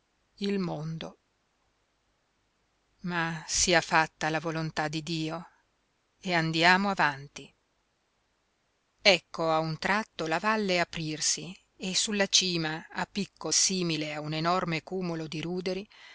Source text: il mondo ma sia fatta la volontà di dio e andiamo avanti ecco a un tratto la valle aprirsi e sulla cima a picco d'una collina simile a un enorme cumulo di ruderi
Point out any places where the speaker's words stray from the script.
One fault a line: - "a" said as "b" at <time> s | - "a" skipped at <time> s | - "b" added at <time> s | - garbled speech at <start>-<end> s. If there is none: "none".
- "d'una collina" skipped at 13.5 s